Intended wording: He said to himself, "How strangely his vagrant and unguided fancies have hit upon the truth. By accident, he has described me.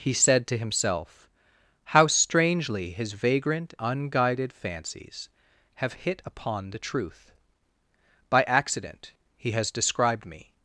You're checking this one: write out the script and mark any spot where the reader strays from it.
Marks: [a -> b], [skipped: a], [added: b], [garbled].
He said to himself, "How strangely his vagrant [skipped: and] unguided fancies have hit upon the truth. By accident, he has described me.